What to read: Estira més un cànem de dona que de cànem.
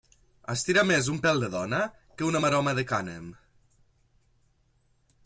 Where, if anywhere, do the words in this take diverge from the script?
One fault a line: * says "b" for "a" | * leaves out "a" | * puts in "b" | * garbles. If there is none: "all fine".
* says "pèl" for "cànem"
* puts in "una maroma"